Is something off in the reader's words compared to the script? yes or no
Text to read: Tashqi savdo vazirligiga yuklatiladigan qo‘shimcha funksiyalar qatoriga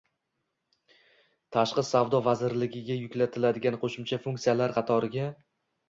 no